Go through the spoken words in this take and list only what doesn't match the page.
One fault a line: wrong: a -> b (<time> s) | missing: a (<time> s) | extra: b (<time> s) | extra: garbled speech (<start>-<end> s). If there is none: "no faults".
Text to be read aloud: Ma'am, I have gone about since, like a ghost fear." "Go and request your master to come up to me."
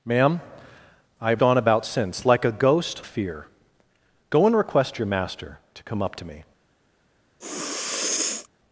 no faults